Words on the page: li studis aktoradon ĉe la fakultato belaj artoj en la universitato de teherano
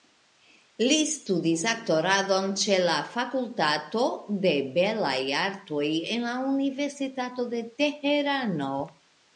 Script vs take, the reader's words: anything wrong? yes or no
yes